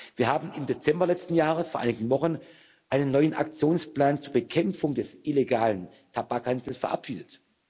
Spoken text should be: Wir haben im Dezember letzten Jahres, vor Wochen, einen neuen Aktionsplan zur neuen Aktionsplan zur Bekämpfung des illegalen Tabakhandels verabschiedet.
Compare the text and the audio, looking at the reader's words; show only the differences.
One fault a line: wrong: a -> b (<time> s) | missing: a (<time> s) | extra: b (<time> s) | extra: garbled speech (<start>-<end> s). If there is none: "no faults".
extra: einigen (1.8 s)
missing: neuen Aktionsplan zur (4.3 s)